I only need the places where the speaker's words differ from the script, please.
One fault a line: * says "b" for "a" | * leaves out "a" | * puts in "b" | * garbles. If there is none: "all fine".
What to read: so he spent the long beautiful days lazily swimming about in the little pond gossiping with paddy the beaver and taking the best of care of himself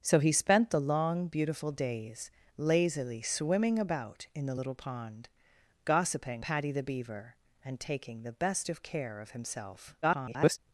* leaves out "with"
* garbles